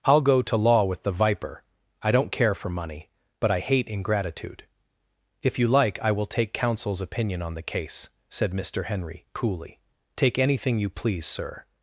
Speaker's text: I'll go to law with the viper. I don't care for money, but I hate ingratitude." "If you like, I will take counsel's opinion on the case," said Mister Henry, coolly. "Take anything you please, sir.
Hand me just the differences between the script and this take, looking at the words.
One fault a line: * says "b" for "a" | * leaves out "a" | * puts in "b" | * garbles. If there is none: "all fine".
all fine